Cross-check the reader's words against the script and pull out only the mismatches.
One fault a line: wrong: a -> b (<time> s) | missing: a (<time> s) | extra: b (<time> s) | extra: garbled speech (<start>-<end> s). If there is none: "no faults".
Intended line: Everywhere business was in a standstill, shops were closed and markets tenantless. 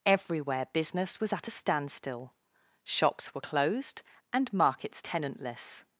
wrong: in -> at (1.3 s)